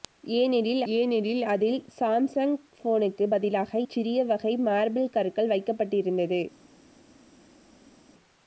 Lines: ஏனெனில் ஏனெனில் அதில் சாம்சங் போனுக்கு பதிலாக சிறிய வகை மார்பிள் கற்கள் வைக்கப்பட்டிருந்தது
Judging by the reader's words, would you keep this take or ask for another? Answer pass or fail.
pass